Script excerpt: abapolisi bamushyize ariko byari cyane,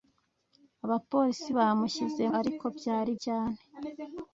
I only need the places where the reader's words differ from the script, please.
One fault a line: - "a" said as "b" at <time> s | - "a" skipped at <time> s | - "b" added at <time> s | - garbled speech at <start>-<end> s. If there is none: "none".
none